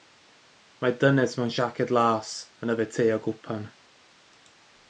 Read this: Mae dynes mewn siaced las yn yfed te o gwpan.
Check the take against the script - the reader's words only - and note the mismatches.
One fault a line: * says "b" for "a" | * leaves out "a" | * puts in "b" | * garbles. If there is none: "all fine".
all fine